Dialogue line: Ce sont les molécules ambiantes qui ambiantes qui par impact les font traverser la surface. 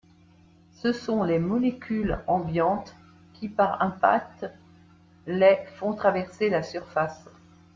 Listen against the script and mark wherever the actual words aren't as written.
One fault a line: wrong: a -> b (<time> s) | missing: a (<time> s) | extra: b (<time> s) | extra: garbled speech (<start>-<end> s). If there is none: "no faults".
missing: ambiantes qui (3.5 s)